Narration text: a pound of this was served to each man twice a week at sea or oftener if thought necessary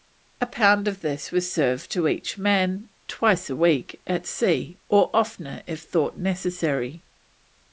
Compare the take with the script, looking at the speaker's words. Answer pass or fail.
pass